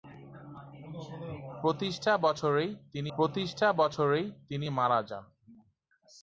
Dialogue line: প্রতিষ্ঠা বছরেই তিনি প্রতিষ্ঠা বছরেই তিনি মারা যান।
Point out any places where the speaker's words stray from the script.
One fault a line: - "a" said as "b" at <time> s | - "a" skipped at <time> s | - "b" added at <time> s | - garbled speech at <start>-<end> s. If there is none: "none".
none